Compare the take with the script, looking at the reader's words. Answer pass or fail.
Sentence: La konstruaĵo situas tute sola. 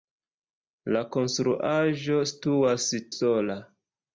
fail